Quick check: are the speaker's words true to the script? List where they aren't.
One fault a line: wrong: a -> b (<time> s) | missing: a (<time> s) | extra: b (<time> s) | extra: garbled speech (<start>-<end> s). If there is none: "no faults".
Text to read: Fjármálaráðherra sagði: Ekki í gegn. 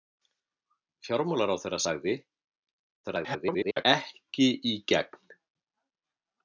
extra: garbled speech (3.0-3.9 s)